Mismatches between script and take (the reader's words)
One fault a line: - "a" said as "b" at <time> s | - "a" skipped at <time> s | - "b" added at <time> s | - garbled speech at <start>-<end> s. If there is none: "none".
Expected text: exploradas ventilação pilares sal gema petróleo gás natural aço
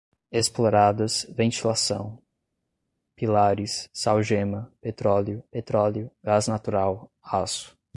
- "petróleo" added at 5.5 s